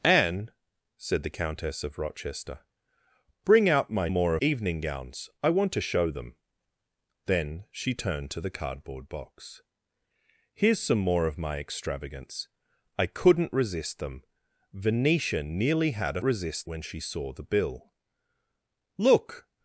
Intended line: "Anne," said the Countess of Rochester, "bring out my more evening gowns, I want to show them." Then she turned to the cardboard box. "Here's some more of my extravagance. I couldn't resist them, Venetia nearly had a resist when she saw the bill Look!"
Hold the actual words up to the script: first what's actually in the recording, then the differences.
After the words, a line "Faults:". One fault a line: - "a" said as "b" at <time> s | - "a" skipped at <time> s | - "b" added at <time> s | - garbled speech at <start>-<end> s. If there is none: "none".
"Anne," said the Countess of Rochester, "bring out my more evening gowns, I want to show them." Then she turned to the cardboard box. "Here's some more of my extravagance. I couldn't resist them, Venetia nearly had a resist when she saw the bill Look!"
Faults:
none